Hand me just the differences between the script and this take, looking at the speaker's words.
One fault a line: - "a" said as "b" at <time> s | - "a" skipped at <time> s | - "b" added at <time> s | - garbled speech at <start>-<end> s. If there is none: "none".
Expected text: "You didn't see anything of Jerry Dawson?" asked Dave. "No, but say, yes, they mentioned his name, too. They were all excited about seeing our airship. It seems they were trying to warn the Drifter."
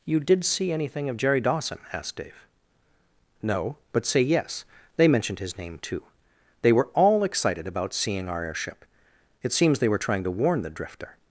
- "didn't" said as "did" at 0.2 s